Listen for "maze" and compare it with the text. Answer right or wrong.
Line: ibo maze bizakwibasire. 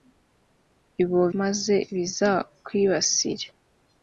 right